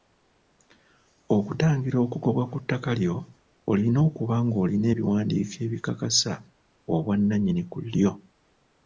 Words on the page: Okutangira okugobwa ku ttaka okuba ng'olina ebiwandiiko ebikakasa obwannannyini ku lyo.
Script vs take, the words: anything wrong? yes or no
yes